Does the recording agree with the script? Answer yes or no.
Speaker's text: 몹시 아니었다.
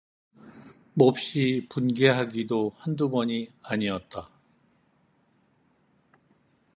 no